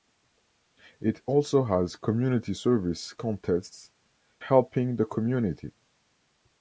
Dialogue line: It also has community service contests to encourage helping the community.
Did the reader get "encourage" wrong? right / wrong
wrong